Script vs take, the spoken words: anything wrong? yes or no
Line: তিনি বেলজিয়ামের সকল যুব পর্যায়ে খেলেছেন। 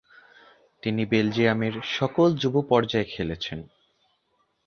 no